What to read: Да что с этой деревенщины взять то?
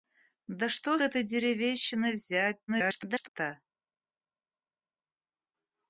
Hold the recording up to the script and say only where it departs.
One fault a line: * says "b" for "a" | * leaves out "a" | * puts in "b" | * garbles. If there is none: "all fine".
* leaves out "с"
* garbles